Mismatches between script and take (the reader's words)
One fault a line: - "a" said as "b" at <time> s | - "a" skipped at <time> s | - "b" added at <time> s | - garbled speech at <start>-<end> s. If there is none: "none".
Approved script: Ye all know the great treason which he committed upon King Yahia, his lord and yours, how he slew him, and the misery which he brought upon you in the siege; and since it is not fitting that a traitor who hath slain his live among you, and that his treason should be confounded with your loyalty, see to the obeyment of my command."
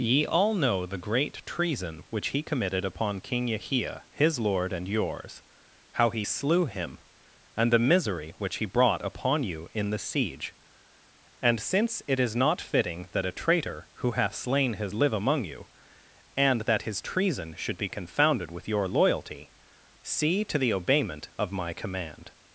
none